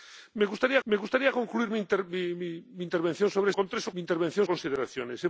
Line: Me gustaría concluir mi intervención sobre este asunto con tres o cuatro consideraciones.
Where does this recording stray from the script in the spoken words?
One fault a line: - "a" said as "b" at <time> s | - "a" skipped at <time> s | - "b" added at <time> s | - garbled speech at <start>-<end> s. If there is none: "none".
- "me gustaría" added at 0.8 s
- "este asunto" skipped at 3.5 s
- "cuatro" said as "intervención" at 4.0 s